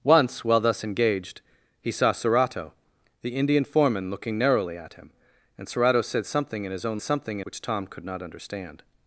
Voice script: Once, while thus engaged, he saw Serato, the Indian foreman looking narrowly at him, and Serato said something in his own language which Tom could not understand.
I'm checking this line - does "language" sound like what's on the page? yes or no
no